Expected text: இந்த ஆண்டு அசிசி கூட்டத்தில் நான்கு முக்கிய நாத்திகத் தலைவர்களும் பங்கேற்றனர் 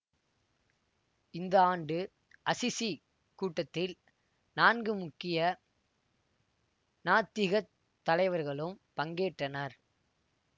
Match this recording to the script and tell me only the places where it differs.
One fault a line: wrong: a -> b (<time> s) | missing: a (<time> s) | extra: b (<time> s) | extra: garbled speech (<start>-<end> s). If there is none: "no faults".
no faults